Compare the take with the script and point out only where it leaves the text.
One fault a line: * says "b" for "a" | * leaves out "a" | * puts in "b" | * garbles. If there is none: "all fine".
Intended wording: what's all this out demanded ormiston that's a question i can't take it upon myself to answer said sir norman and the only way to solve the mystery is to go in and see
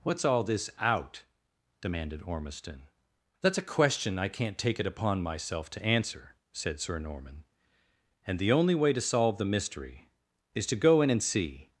all fine